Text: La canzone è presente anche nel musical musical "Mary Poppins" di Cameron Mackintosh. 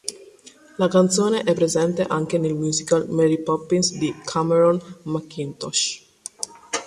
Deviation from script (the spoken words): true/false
true